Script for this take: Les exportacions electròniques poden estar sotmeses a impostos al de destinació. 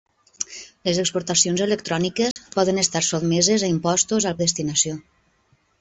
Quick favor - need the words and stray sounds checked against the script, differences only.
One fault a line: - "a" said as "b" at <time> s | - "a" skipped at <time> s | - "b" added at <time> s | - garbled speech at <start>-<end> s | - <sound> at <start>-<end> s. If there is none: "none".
- dropout at 2.3-2.4 s